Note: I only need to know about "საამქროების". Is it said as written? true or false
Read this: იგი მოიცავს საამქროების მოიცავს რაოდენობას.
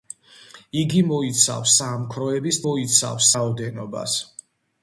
true